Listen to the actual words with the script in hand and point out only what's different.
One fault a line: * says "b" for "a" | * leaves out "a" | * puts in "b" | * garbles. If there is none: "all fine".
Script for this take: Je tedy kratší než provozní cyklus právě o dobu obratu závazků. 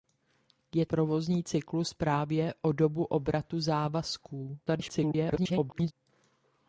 * leaves out "tedy kratší než"
* garbles